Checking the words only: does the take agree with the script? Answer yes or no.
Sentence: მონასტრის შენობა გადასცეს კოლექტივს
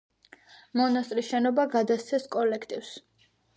yes